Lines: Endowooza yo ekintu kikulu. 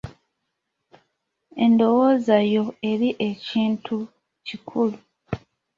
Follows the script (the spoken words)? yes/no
no